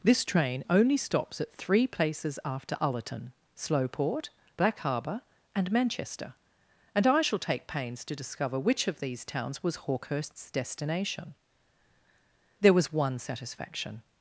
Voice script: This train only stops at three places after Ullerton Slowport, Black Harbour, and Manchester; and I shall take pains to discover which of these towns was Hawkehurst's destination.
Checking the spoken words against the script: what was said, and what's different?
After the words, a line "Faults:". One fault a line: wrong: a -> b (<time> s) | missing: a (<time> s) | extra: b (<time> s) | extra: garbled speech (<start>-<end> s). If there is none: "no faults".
This train only stops at three places after Ullerton Slowport, Black Harbour, and Manchester; and I shall take pains to discover which of these towns was Hawkehurst's destination. There was one satisfaction
Faults:
extra: There was one satisfaction (12.6 s)